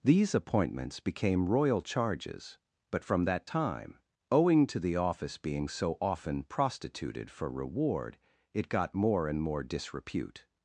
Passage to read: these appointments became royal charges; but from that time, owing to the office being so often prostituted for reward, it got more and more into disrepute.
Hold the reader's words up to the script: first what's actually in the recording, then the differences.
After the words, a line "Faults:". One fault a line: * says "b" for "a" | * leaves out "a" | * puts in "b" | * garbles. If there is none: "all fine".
these appointments became royal charges; but from that time, owing to the office being so often prostituted for reward, it got more and more disrepute.
Faults:
* leaves out "into"